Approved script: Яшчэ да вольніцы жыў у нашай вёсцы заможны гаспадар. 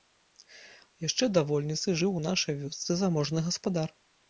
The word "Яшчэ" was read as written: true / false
true